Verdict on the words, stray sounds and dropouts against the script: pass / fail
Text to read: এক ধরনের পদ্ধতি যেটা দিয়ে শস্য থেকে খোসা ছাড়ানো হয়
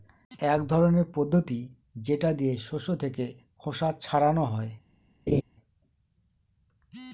fail